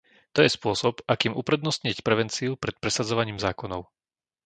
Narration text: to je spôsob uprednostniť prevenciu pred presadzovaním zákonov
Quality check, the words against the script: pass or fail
fail